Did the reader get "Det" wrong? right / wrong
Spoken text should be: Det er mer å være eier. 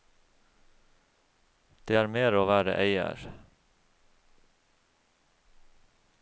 right